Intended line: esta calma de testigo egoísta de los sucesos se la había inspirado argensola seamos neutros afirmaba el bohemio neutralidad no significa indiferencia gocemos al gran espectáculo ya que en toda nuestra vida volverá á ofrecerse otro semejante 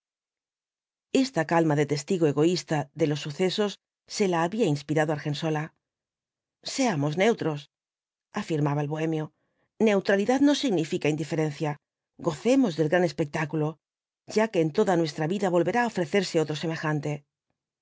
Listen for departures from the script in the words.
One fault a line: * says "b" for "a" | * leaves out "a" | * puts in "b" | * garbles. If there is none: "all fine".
* says "del" for "al"